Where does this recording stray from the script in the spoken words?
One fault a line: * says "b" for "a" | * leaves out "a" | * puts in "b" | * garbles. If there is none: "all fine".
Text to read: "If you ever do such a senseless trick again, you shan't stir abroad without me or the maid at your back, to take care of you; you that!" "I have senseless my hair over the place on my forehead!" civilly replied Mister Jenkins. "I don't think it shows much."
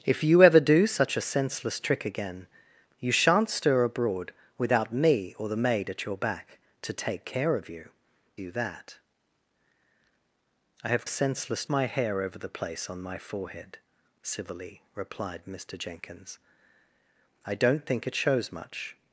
all fine